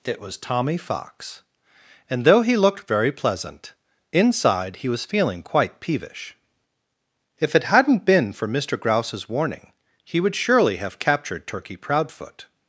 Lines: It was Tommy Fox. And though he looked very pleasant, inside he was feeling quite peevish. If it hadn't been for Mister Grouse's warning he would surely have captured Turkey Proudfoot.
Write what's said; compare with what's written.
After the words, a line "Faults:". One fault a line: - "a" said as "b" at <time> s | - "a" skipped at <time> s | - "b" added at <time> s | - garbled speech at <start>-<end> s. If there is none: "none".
It was Tommy Fox. And though he looked very pleasant, inside he was feeling quite peevish. If it hadn't been for Mister Grouse's warning he would surely have captured Turkey Proudfoot.
Faults:
none